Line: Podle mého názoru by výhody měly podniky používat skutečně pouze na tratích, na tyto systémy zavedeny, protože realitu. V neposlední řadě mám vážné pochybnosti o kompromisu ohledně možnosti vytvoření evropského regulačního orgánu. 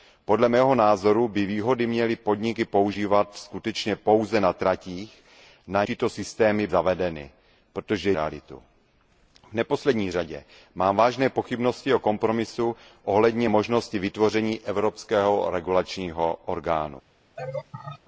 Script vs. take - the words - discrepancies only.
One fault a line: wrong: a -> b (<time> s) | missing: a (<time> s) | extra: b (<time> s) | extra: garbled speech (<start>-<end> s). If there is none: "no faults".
no faults